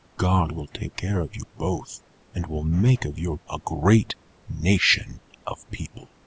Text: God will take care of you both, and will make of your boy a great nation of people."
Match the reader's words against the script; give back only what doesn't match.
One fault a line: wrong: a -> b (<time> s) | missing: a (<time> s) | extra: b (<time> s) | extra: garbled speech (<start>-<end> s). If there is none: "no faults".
missing: boy (3.4 s)